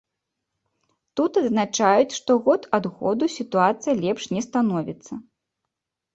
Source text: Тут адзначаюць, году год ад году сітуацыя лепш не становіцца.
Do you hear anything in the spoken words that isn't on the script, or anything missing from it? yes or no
yes